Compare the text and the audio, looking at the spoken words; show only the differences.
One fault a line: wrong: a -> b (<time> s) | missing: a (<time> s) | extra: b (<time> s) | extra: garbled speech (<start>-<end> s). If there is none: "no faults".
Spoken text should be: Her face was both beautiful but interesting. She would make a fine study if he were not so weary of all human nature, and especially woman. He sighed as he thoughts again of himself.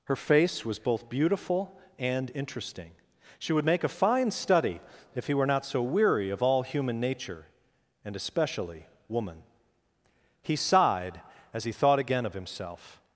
wrong: but -> and (2.0 s)
wrong: thoughts -> thought (11.7 s)